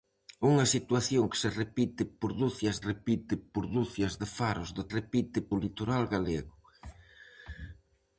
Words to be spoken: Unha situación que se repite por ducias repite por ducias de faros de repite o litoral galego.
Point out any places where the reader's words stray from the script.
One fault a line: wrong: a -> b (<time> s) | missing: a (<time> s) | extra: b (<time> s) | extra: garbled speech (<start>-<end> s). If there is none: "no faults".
no faults